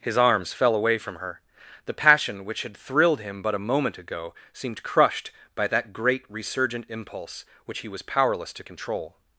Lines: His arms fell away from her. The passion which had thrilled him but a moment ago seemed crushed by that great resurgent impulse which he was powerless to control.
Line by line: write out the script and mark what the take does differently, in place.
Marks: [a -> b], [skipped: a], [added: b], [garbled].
His arms fell away from her. The passion which had thrilled him but a moment ago seemed crushed by that great resurgent impulse which he was powerless to control.